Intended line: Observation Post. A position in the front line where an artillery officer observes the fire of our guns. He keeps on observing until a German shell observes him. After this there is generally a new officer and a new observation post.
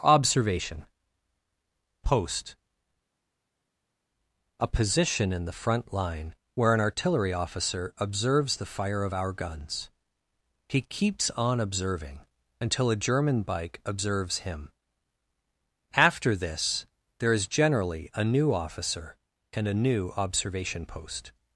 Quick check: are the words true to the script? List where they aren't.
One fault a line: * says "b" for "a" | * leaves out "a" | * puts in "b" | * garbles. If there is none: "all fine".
* says "bike" for "shell"